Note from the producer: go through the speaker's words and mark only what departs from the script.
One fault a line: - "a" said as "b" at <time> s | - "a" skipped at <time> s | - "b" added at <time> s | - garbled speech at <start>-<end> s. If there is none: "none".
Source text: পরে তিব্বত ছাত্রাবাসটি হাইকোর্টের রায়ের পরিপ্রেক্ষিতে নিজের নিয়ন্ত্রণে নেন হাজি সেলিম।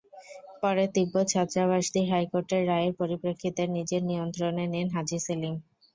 none